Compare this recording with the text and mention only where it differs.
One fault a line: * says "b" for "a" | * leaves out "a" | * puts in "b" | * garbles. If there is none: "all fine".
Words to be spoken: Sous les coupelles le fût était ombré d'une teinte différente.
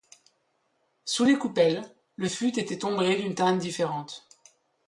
all fine